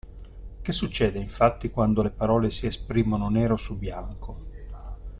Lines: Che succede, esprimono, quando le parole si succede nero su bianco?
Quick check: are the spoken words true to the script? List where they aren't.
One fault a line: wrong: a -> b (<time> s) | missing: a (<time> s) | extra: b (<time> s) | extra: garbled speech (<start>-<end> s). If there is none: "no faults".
wrong: esprimono -> infatti (1.2 s)
wrong: succede -> esprimono (2.7 s)